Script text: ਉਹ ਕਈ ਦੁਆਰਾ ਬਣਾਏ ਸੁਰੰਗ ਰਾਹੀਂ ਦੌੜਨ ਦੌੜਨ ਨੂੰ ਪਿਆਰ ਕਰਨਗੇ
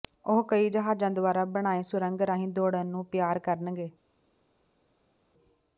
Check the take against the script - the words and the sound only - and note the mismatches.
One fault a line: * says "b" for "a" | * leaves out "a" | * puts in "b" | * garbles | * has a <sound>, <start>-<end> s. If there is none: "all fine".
* puts in "ਜਹਾਜ਼ਾਂ"
* leaves out "ਦੌੜਨ"